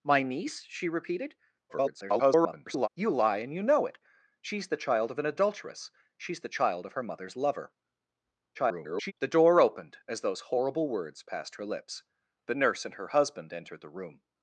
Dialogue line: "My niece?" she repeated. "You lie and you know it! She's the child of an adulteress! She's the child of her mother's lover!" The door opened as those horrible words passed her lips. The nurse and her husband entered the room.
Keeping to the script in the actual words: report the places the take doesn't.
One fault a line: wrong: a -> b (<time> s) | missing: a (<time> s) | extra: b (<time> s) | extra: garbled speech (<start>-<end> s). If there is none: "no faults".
extra: garbled speech (1.7-2.9 s)
extra: garbled speech (8.5-9.1 s)